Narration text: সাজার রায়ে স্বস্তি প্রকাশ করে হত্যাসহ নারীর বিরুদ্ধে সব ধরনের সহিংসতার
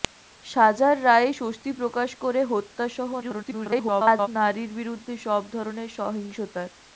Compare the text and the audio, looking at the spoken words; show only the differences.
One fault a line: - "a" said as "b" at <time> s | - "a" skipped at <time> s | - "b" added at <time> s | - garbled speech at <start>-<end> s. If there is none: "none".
- garbled speech at 3.2-4.3 s